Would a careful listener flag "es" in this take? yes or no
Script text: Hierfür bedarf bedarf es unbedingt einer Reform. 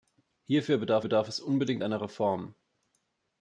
no